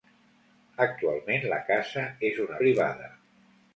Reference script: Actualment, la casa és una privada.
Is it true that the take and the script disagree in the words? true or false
false